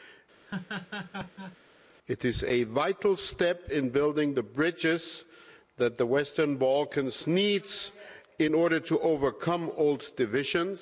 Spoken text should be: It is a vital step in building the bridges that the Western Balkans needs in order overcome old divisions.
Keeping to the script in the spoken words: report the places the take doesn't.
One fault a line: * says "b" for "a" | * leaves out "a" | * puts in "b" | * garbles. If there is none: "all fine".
* puts in "to"